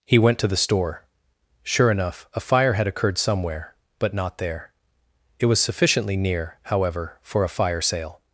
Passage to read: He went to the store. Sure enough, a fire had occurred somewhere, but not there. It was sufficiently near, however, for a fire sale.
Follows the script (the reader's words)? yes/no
yes